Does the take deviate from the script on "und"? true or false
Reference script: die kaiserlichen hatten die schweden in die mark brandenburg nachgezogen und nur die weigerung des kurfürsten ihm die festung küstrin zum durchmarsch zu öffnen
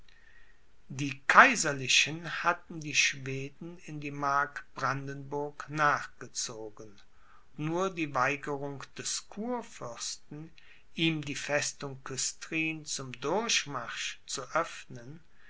true